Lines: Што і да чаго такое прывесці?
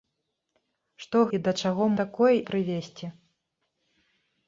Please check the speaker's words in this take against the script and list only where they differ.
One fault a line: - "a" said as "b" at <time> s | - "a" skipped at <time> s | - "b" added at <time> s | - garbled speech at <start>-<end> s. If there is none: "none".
none